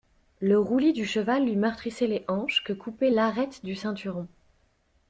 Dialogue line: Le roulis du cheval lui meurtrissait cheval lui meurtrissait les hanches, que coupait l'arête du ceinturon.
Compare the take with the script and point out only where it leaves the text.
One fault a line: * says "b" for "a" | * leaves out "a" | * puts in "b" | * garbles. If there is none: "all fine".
* leaves out "cheval lui meurtrissait"